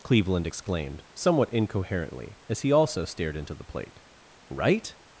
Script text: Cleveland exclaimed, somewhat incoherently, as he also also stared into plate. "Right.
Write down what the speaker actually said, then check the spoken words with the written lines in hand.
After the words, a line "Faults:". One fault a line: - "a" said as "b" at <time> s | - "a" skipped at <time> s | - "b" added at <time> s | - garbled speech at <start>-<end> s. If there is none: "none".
Cleveland exclaimed, somewhat incoherently, as he also stared into the plate. "Right.
Faults:
- "also" skipped at 3.0 s
- "the" added at 3.5 s